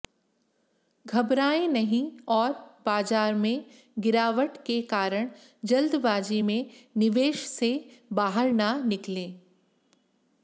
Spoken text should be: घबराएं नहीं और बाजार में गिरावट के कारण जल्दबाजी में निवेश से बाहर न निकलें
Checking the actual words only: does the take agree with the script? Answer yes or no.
yes